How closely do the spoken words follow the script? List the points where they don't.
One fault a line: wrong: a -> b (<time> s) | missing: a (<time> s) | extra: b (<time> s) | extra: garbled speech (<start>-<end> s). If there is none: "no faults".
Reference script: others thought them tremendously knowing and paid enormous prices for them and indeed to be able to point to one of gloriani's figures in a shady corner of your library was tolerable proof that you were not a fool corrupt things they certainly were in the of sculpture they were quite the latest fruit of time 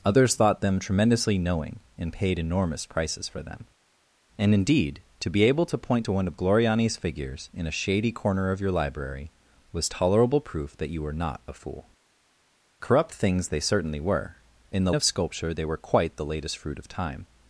no faults